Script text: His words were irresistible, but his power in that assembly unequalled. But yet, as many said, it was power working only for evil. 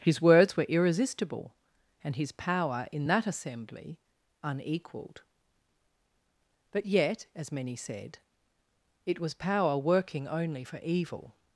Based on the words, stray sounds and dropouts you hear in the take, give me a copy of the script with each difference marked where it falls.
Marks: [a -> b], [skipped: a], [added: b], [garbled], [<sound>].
His words were irresistible, [but -> and] his power in that assembly unequalled. But yet, as many said, it was power working only for evil.